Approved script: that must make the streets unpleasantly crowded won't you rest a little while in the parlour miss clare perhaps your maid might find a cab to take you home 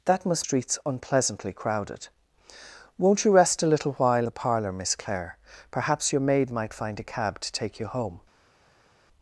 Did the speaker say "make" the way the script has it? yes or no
no